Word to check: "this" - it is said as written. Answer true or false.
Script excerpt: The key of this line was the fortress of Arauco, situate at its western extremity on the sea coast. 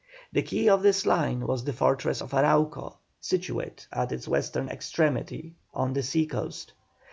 true